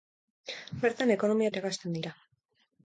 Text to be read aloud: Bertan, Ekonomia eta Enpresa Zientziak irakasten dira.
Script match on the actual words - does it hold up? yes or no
no